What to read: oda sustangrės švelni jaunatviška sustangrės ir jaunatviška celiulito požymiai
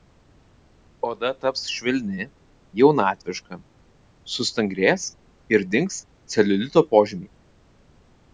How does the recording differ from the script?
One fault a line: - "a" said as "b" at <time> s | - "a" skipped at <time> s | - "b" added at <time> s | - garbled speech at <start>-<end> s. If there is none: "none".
- "sustangrės" said as "taps" at 1.4 s
- "jaunatviška" said as "dings" at 5.7 s